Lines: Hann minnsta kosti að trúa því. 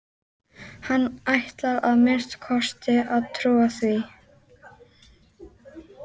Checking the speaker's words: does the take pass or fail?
fail